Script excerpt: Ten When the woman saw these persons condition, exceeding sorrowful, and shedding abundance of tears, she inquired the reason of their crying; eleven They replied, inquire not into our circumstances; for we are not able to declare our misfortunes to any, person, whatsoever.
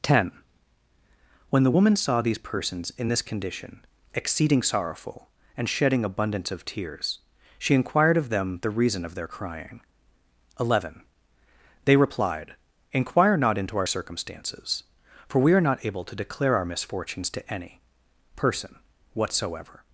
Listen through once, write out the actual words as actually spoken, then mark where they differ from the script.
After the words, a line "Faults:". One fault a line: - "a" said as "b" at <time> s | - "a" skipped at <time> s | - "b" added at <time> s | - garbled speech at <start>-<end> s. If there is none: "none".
Ten When the woman saw these persons in this condition, exceeding sorrowful, and shedding abundance of tears, she inquired of them the reason of their crying; eleven They replied, inquire not into our circumstances; for we are not able to declare our misfortunes to any, person, whatsoever.
Faults:
- "in this" added at 3.0 s
- "of them" added at 8.1 s